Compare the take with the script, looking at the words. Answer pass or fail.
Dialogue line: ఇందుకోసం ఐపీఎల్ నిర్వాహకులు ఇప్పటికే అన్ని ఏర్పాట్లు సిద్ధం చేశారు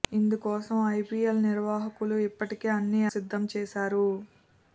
fail